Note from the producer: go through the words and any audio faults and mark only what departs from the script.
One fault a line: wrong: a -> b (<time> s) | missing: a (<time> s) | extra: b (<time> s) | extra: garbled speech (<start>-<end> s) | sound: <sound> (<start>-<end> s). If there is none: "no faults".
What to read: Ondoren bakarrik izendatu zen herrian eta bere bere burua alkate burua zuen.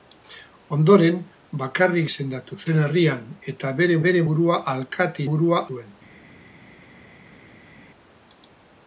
no faults